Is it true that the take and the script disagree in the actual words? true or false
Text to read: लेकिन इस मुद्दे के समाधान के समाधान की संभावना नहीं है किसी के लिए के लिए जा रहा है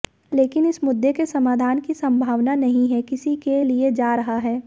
true